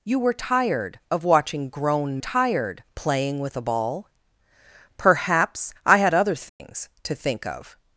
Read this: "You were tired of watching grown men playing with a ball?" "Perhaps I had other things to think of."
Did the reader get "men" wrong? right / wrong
wrong